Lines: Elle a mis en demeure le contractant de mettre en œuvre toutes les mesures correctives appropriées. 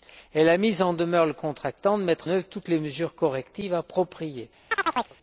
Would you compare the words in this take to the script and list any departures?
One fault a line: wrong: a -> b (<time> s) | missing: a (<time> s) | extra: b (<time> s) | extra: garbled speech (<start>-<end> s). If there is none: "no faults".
missing: en (2.3 s)